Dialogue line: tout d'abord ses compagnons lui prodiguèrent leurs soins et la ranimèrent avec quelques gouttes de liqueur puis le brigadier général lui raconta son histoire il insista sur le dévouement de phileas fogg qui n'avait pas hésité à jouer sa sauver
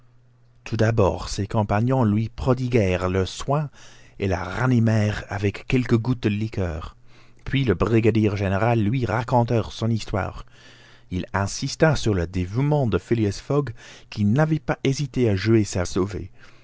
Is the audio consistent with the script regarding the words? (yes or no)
yes